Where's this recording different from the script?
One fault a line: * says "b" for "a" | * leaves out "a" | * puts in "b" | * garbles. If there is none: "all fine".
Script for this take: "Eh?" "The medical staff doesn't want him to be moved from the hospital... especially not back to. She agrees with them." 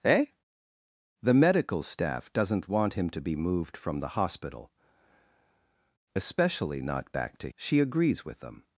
all fine